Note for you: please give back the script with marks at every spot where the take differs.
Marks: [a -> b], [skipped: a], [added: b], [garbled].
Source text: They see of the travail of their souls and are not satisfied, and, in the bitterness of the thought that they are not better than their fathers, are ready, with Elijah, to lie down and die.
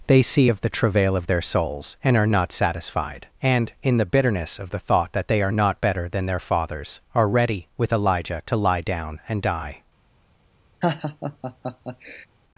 They see of the travail of their souls and are not satisfied, and, in the bitterness of the thought that they are not better than their fathers, are ready, with Elijah, to lie down and die.